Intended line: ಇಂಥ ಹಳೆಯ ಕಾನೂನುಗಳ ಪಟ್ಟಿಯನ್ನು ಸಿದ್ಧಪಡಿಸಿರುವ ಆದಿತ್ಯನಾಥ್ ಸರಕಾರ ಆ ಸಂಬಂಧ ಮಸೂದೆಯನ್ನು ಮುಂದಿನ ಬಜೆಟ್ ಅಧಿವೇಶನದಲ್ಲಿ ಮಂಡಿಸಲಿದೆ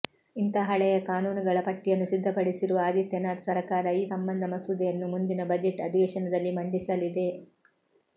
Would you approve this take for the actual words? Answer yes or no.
no